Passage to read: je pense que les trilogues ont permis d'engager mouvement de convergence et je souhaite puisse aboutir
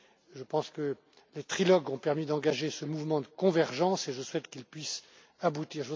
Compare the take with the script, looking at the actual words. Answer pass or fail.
fail